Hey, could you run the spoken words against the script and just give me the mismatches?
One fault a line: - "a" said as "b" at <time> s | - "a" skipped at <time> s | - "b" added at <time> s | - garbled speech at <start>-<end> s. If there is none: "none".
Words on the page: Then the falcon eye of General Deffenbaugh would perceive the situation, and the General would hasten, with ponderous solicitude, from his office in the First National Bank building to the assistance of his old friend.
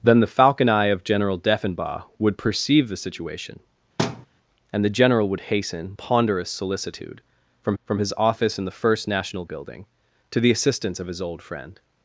- "with" skipped at 5.9 s
- "from" added at 7.8 s
- "Bank" skipped at 9.4 s